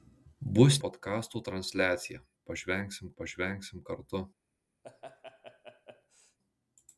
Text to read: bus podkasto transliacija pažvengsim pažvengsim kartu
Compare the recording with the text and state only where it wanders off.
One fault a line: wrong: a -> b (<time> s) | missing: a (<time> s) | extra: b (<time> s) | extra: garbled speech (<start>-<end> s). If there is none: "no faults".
no faults